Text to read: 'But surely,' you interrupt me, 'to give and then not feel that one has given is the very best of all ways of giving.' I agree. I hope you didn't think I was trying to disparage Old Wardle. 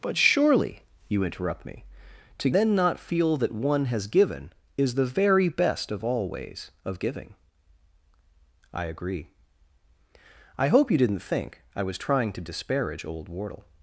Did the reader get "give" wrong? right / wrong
wrong